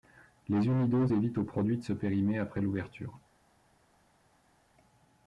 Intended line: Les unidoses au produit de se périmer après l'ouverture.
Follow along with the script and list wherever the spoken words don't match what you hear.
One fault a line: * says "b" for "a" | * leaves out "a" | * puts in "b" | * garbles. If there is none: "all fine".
* puts in "évitent"